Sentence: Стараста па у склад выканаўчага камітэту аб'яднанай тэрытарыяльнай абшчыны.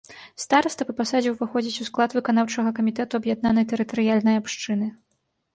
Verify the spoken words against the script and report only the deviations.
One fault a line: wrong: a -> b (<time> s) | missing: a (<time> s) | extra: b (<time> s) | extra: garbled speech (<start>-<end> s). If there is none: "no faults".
extra: пасадзе ўваходзіць (1.0 s)